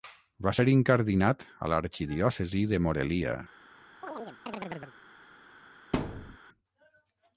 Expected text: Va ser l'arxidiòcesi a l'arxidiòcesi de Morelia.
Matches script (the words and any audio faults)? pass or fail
fail